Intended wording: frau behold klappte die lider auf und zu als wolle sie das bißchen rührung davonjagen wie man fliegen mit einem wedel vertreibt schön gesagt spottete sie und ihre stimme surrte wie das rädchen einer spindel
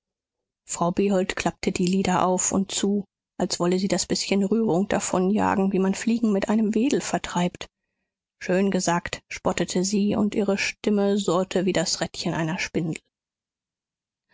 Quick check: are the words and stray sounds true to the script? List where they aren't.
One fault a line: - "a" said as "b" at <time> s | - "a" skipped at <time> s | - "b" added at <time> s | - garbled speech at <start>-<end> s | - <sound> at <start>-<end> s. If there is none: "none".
none